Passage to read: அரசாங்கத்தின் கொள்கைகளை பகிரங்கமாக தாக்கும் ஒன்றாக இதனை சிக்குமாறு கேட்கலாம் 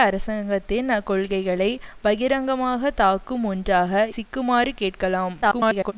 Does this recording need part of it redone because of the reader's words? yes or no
yes